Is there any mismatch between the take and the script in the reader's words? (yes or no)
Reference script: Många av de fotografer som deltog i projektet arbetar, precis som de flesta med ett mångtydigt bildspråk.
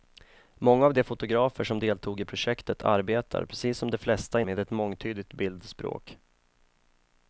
no